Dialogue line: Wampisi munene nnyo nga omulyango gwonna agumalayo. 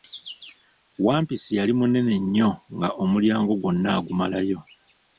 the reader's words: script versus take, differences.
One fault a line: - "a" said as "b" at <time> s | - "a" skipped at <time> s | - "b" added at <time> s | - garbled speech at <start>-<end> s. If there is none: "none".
- "yali" added at 1.6 s